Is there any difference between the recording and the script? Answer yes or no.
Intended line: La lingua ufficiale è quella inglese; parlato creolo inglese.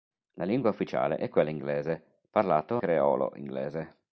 no